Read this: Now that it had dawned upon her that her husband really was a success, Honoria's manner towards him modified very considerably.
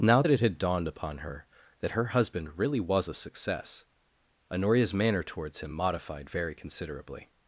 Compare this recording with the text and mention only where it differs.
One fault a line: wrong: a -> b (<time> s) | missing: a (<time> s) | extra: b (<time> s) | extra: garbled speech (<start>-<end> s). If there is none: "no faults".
no faults